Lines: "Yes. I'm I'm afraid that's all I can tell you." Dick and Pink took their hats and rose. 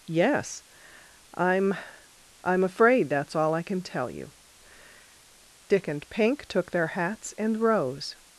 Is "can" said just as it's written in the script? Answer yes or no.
yes